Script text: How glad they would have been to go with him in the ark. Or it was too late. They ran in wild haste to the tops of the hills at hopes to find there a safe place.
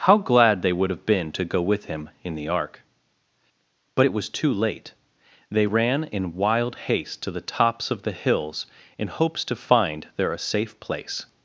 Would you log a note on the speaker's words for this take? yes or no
yes